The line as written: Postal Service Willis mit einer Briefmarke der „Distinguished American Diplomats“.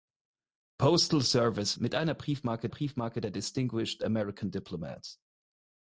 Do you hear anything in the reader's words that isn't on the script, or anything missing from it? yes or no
yes